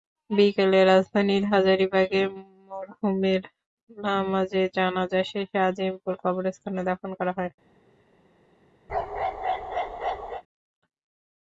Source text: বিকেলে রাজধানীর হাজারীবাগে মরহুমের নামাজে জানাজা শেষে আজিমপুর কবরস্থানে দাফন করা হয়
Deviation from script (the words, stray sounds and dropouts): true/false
true